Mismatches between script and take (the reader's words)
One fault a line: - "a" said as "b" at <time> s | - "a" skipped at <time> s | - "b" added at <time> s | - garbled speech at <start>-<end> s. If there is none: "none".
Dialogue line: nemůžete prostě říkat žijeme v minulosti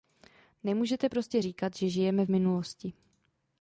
- "že" added at 1.7 s